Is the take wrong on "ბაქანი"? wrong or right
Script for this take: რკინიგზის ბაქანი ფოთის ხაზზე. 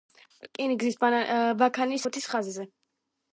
right